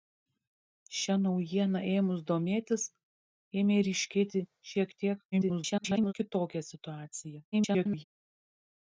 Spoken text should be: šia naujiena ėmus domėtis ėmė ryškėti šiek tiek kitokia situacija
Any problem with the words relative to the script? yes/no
yes